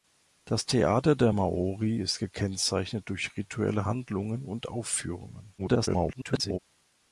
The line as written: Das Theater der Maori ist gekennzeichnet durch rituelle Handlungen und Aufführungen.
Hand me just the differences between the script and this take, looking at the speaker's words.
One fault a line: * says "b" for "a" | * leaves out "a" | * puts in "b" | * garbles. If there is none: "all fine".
* garbles